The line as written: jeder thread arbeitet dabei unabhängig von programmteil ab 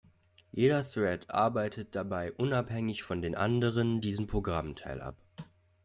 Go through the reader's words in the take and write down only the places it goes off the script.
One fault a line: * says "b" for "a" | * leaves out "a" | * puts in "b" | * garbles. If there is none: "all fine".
* puts in "den anderen diesen"